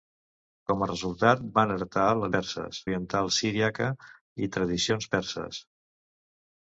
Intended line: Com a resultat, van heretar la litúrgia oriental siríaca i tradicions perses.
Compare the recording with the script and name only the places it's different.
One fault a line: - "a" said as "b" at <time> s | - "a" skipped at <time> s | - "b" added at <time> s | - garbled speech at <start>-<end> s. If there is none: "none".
- "litúrgia" said as "perses" at 2.4 s